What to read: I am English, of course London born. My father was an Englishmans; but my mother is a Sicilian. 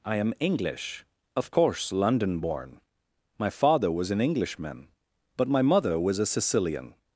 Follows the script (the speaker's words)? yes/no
no